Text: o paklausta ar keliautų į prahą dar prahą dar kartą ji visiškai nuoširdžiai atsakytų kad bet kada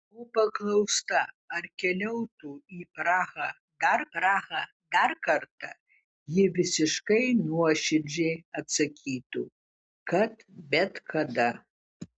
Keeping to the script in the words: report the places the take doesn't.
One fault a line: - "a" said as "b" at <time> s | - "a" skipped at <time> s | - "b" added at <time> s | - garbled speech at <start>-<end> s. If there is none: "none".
none